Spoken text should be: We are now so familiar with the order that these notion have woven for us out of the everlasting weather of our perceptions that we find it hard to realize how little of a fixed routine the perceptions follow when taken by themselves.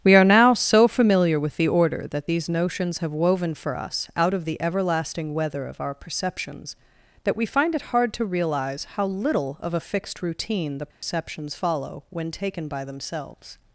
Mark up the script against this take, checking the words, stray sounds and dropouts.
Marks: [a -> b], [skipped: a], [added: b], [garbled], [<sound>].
We are now so familiar with the order that these [notion -> notions] have woven for us out of the everlasting weather of our perceptions that we find it hard to realize how little of a fixed routine the perceptions [dropout] follow when taken by themselves.